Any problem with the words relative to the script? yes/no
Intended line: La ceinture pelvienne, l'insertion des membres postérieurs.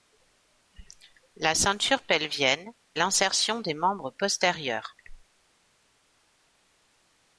no